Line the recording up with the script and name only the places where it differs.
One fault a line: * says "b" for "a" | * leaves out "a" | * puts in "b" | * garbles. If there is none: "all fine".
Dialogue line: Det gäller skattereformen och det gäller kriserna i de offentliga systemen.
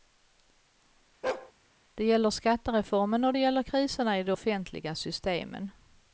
all fine